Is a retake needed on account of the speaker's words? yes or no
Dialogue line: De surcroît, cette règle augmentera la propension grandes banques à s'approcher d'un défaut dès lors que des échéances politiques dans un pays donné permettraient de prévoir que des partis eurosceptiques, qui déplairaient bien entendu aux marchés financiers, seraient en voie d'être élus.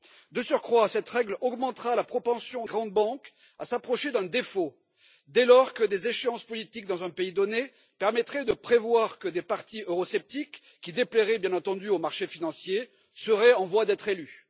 no